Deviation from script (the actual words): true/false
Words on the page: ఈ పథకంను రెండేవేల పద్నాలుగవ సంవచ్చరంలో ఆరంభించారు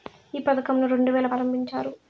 true